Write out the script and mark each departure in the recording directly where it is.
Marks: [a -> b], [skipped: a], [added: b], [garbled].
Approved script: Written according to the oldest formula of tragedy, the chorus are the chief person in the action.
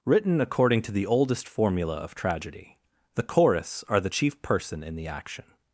Written according to the oldest formula of tragedy, the chorus are the chief person in the action.